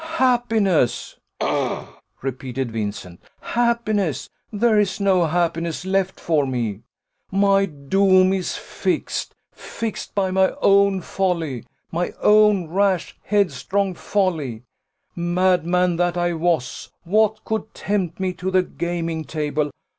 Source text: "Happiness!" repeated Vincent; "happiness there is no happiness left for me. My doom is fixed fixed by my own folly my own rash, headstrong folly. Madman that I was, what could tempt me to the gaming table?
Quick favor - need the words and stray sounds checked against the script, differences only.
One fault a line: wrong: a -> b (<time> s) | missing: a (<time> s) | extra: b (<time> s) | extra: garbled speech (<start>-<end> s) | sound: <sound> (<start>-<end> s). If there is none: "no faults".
sound: throat clearing (1.4-2.0 s)